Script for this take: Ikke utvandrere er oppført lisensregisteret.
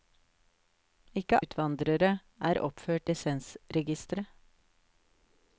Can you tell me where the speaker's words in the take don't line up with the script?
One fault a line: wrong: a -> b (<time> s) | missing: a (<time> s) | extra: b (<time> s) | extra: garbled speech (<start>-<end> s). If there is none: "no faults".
no faults